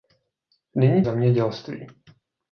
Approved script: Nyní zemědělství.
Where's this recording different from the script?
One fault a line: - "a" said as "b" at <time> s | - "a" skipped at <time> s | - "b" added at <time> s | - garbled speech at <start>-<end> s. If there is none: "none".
none